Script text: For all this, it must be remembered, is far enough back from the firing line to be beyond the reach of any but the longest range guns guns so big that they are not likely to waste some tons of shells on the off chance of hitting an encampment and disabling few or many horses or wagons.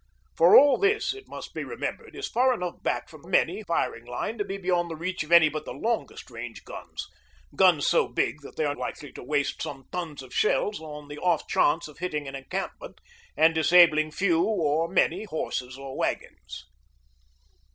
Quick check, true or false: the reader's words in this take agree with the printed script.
false